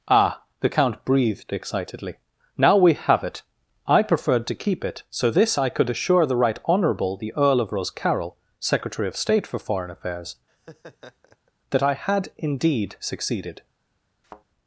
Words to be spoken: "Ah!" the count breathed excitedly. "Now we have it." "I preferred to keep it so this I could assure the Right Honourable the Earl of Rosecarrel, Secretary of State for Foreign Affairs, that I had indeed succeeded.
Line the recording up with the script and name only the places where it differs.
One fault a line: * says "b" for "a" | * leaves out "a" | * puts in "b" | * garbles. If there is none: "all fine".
all fine